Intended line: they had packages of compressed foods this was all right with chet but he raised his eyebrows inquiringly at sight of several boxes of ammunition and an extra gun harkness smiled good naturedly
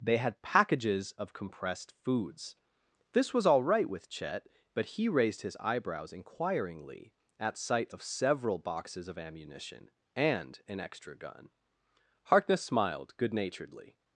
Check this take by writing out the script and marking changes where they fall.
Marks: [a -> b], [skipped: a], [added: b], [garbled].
they had packages of compressed foods this was all right with chet but he raised his eyebrows inquiringly at sight of several boxes of ammunition and an extra gun harkness smiled good naturedly